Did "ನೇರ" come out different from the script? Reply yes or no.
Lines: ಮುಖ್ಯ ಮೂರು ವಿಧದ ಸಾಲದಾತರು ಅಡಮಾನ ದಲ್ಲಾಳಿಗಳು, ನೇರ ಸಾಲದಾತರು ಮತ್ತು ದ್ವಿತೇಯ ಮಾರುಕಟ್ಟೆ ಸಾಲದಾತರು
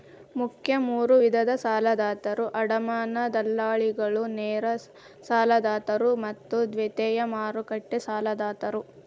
no